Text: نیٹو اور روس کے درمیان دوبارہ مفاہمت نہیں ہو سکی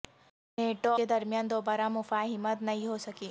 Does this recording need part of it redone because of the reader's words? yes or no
yes